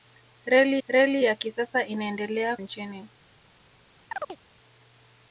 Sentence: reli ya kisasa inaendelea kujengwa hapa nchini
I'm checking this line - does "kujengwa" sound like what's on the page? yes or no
no